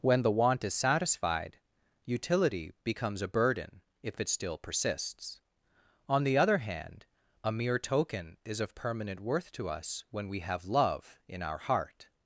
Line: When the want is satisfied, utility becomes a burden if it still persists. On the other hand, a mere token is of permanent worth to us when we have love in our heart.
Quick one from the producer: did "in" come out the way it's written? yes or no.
yes